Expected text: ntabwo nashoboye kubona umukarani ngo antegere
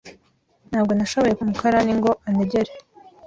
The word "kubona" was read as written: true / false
false